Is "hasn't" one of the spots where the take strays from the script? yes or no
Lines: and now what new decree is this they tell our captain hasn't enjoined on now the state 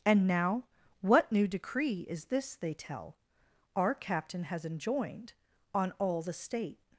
yes